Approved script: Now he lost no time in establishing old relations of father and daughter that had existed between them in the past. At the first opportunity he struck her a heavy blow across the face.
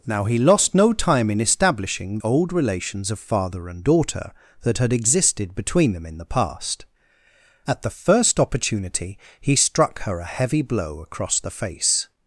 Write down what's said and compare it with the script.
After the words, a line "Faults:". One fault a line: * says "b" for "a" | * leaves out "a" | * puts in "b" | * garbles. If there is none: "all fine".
Now he lost no time in establishing old relations of father and daughter that had existed between them in the past. At the first opportunity he struck her a heavy blow across the face.
Faults:
all fine